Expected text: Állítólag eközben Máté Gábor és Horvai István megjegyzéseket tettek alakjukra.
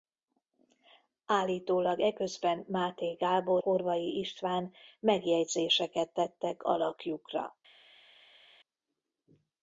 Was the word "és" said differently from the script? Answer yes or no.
yes